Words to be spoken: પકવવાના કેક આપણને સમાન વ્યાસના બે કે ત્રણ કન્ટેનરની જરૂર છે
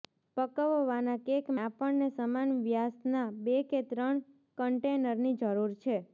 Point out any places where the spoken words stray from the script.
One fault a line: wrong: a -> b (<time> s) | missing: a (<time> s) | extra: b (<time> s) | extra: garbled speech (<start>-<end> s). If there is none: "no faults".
no faults